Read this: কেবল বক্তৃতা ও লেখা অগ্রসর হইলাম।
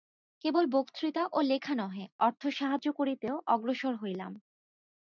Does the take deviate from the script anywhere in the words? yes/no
yes